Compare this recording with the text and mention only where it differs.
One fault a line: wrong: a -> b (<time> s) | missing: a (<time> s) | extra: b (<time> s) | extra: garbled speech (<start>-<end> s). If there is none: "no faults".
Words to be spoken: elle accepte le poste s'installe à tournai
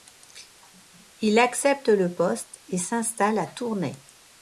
wrong: elle -> il (1.2 s)
extra: et (2.7 s)